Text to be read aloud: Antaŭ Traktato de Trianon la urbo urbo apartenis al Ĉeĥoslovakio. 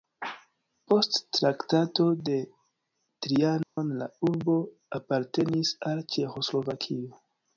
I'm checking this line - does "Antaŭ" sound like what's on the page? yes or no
no